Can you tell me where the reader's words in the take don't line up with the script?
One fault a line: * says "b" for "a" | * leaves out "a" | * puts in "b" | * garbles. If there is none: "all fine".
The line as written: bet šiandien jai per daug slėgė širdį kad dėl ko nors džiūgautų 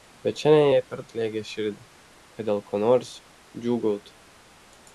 * leaves out "daug"